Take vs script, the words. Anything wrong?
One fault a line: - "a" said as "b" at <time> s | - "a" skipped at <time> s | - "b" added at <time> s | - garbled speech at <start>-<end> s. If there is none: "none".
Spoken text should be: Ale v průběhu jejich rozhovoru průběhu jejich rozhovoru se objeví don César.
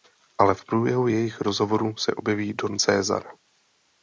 - "průběhu jejich rozhovoru" skipped at 2.0 s